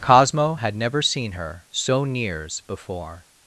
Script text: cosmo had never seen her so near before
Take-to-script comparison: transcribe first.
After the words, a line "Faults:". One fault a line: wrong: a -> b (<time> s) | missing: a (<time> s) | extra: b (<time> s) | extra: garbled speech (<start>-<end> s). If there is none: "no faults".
cosmo had never seen her so nears before
Faults:
wrong: near -> nears (2.0 s)